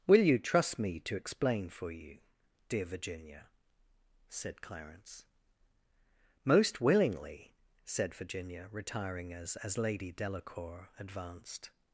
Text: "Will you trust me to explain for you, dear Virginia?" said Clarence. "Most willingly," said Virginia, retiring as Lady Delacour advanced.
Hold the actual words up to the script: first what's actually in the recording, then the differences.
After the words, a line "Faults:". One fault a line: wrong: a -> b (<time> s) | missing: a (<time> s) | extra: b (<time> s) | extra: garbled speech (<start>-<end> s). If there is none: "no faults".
"Will you trust me to explain for you, dear Virginia?" said Clarence. "Most willingly," said Virginia, retiring as as Lady Delacour advanced.
Faults:
extra: as (9.6 s)